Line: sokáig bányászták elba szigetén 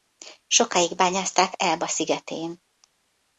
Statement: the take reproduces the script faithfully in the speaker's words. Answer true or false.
true